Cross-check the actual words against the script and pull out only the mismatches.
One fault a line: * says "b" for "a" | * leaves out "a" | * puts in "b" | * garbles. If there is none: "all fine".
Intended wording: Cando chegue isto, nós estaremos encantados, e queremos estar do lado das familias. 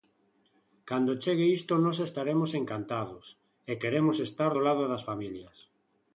all fine